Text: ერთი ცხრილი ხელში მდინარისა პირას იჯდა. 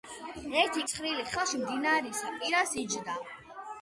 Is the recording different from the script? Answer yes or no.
no